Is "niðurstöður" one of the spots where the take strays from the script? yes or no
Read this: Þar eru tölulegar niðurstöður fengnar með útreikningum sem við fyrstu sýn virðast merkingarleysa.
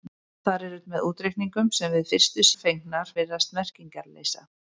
yes